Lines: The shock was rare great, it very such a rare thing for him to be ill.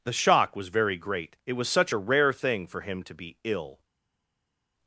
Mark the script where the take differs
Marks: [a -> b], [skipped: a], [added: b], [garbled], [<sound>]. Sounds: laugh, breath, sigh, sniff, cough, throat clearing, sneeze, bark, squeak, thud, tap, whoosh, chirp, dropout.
The shock was [rare -> very] great, it [very -> was] such a rare thing for him to be ill.